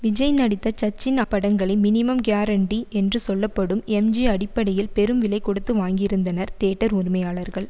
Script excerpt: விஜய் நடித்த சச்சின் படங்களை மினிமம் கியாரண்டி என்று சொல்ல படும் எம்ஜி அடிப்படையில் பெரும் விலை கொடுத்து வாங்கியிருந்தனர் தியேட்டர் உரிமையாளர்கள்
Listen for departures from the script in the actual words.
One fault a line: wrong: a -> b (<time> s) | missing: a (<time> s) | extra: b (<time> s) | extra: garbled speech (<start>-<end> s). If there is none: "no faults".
no faults